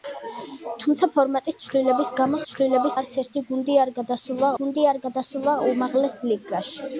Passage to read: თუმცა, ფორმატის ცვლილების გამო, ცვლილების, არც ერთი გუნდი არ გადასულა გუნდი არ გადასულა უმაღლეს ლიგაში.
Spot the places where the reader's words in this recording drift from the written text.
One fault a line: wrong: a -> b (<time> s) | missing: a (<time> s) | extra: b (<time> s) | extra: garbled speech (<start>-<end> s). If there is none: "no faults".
no faults